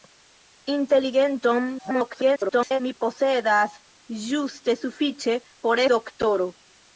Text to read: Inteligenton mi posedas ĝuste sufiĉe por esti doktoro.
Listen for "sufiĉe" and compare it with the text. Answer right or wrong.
right